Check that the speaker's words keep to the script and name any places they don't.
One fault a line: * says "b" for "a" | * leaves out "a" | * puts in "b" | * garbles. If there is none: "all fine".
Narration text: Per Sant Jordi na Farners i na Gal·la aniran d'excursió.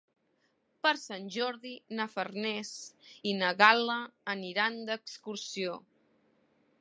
all fine